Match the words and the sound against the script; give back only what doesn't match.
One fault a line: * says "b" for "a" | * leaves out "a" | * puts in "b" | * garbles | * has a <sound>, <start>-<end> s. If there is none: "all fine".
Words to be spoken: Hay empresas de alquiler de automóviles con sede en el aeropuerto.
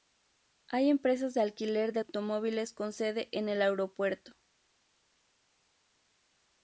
all fine